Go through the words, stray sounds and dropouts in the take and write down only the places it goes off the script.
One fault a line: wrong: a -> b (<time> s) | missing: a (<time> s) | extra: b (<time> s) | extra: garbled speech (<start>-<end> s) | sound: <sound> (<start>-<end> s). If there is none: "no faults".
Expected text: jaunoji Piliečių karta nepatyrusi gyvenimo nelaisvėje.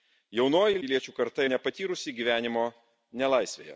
no faults